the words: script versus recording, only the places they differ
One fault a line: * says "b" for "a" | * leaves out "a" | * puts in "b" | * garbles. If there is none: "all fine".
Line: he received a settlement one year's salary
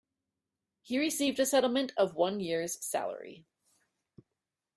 * puts in "of"